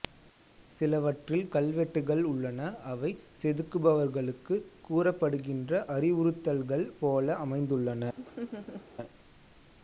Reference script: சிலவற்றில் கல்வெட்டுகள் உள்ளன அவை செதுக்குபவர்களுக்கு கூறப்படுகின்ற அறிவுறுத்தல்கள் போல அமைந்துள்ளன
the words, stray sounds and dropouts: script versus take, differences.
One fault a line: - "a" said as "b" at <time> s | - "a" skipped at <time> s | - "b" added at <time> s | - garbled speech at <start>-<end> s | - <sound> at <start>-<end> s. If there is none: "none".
- laugh at 8.2-8.9 s